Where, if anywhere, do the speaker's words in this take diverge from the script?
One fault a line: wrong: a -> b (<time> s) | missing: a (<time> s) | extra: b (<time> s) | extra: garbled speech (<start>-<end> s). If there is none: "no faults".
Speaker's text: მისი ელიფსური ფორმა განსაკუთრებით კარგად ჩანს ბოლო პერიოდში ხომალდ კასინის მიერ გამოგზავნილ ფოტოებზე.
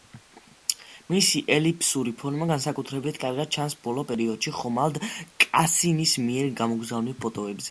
no faults